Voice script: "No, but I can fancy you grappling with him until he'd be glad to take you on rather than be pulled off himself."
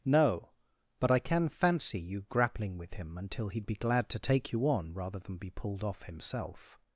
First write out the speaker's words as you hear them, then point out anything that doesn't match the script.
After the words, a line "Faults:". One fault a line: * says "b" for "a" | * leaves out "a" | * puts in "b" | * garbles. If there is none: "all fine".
"No, but I can fancy you grappling with him until he'd be glad to take you on rather than be pulled off himself."
Faults:
all fine